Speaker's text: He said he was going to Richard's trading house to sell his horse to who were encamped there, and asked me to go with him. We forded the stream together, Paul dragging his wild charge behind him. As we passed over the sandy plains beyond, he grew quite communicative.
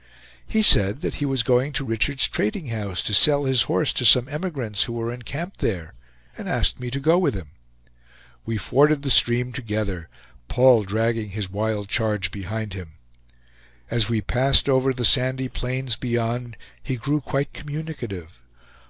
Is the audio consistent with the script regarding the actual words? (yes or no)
no